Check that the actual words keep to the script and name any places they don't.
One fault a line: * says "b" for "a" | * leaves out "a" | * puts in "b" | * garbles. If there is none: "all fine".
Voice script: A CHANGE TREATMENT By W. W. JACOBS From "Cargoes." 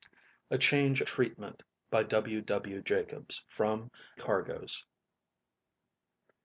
all fine